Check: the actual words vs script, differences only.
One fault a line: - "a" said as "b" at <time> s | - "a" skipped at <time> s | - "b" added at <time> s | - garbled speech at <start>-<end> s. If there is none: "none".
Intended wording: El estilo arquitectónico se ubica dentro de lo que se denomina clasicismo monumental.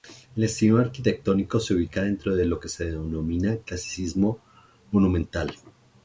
none